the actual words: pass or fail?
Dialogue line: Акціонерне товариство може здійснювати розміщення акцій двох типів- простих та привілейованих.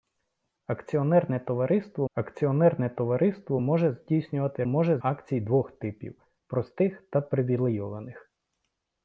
fail